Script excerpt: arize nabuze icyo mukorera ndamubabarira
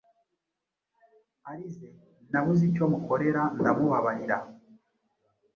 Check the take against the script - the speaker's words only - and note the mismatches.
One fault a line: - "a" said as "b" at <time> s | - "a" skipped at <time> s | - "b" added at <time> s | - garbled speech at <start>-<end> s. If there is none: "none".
none